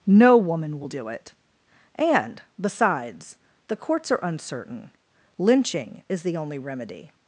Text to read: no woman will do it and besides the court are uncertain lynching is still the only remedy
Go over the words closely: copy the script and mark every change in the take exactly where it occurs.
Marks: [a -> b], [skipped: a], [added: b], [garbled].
no woman will do it and besides the [court -> courts] are uncertain lynching is [skipped: still] the only remedy